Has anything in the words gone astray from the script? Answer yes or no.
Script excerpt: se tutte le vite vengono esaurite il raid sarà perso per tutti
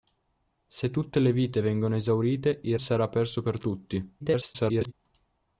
yes